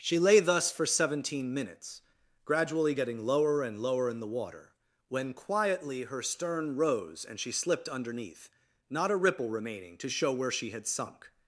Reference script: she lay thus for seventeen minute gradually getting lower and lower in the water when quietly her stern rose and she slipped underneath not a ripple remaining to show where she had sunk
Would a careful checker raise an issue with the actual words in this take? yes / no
yes